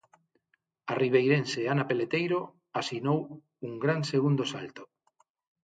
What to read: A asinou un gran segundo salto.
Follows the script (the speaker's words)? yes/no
no